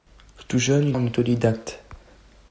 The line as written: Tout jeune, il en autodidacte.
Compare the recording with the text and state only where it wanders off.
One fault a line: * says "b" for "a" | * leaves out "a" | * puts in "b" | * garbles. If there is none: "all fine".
all fine